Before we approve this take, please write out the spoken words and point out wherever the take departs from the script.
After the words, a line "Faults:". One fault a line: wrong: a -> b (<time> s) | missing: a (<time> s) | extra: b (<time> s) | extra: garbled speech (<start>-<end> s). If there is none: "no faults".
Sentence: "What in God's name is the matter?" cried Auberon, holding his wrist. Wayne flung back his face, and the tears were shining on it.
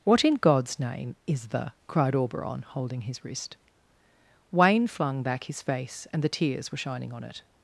"What in God's name is the?" cried Auberon, holding his wrist. Wayne flung back his face, and the tears were shining on it.
Faults:
missing: matter (1.7 s)